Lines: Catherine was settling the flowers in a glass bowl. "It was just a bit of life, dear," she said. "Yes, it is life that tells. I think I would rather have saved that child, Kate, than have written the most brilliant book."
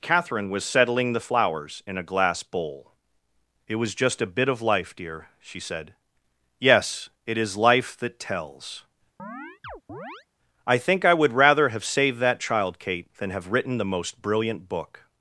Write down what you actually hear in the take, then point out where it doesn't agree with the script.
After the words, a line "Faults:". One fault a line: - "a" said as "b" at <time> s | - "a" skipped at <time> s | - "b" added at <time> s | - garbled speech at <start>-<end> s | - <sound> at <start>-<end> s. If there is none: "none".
Catherine was settling the flowers in a glass bowl. "It was just a bit of life, dear," she said. "Yes, it is life that tells. I think I would rather have saved that child, Kate, than have written the most brilliant book."
Faults:
- chirp at 9.2-10.3 s